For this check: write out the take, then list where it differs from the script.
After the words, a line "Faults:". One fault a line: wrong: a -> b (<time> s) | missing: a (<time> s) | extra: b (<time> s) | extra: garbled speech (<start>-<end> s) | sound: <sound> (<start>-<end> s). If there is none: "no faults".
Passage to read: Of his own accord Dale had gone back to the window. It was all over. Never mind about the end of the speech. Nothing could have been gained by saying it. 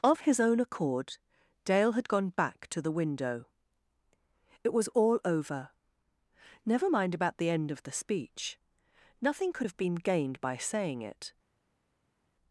Of his own accord Dale had gone back to the window. It was all over. Never mind about the end of the speech. Nothing could have been gained by saying it.
Faults:
no faults